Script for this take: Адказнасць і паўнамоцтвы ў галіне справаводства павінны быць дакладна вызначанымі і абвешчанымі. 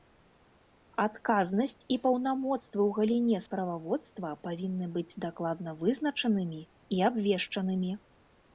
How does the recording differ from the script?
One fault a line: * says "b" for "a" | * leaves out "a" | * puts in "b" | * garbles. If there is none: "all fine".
all fine